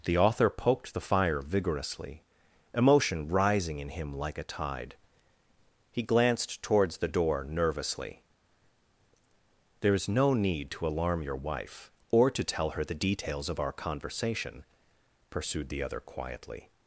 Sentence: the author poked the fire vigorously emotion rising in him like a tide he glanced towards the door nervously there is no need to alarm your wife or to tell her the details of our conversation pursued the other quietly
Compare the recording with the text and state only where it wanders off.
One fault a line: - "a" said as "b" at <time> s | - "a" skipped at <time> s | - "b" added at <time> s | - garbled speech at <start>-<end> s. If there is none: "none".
none